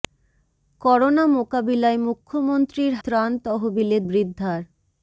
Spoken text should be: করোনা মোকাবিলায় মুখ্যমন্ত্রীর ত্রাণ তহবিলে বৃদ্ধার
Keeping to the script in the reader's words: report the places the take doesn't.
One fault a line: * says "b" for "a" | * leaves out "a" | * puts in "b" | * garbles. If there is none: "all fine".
all fine